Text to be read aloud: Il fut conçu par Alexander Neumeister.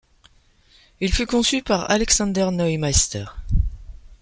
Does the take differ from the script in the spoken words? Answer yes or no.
no